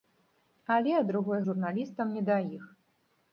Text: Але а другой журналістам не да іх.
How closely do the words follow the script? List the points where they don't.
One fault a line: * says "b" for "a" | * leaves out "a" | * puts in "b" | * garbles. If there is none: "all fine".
all fine